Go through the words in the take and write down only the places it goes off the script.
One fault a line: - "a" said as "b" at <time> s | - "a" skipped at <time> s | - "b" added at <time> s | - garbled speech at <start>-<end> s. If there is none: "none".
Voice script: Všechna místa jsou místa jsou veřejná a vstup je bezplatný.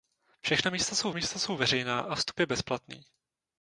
none